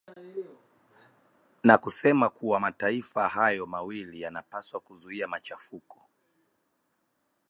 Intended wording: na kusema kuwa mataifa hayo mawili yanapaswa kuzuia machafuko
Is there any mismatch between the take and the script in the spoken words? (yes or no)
no